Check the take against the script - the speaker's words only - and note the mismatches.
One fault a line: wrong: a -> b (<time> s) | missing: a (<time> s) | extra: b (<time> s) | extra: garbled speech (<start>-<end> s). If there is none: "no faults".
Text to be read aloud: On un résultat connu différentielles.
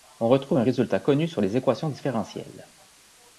extra: retrouve (0.3 s)
extra: sur les équations (1.3 s)